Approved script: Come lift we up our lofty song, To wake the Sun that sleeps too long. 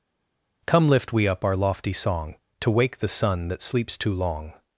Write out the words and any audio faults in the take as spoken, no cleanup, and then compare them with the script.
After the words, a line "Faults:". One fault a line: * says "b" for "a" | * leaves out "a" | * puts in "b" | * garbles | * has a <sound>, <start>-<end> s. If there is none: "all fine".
Come lift we up our lofty song, To wake the Sun that sleeps too long.
Faults:
all fine